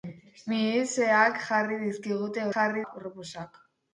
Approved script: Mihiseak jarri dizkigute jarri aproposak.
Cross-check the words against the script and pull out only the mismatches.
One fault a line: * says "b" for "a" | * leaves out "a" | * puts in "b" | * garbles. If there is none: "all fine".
all fine